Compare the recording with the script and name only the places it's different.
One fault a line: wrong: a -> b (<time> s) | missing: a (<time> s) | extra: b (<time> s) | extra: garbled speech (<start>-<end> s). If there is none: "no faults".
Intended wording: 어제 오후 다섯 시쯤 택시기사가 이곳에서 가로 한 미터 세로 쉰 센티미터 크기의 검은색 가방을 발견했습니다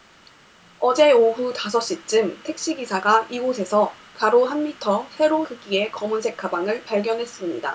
missing: 쉰 센티미터 (5.5 s)